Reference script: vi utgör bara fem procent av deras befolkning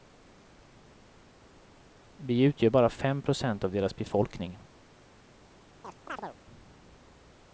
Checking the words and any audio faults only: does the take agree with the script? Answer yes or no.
no